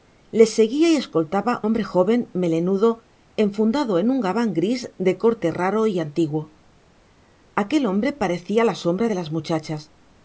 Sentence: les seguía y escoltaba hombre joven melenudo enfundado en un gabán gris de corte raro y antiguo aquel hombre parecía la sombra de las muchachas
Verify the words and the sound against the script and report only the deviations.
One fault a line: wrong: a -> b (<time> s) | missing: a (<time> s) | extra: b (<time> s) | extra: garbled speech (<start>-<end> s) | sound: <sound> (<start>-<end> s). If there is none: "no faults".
no faults